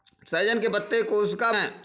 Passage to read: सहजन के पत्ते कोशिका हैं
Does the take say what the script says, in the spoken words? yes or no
yes